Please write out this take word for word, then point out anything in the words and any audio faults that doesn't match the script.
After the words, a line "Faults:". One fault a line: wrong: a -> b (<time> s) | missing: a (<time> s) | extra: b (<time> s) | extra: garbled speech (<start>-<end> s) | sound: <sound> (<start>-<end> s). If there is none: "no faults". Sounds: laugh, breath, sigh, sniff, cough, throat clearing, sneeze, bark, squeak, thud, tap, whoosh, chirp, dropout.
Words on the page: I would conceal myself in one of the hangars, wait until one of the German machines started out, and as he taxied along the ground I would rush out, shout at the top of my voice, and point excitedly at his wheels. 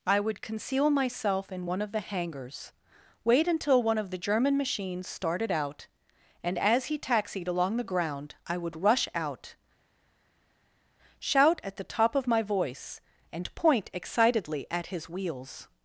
I would conceal myself in one of the hangars, wait until one of the German machines started out, and as he taxied along the ground I would rush out, shout at the top of my voice, and point excitedly at his wheels.
Faults:
no faults